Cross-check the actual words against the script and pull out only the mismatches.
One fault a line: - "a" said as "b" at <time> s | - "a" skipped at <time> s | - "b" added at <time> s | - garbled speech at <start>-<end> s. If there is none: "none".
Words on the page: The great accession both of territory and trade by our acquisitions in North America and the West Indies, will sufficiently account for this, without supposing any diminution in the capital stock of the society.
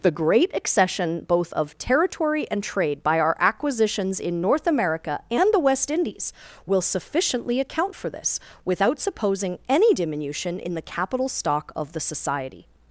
none